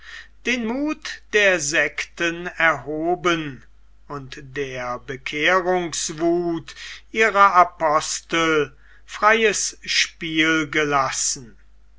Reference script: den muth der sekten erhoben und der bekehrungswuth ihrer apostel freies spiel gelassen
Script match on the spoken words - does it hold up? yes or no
yes